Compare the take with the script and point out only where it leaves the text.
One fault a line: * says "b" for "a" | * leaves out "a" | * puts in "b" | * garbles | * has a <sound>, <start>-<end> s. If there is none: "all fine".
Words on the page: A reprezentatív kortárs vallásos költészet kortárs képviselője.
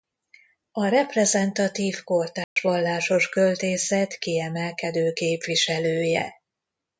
* has a dropout, 2.4-2.6 s
* says "kiemelkedő" for "kortárs"